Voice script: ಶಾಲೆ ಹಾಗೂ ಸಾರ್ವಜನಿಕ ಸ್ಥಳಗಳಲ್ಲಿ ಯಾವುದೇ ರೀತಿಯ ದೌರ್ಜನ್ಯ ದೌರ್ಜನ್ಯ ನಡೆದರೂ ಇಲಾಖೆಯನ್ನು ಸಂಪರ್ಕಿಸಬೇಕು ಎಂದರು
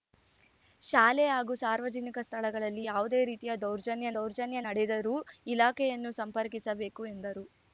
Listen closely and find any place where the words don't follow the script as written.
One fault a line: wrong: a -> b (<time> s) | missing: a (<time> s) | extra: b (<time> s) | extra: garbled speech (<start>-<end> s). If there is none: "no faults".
no faults